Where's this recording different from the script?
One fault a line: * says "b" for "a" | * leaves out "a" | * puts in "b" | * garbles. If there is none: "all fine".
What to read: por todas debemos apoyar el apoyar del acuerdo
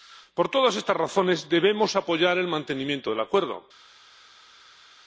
* puts in "estas razones"
* says "mantenimiento" for "apoyar"